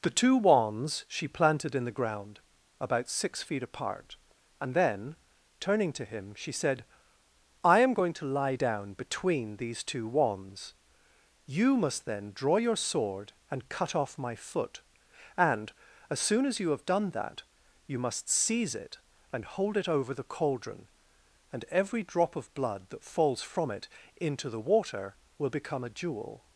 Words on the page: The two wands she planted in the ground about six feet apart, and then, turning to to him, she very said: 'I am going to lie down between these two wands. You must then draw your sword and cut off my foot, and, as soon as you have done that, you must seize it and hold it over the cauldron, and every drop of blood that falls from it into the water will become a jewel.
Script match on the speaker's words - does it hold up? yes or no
no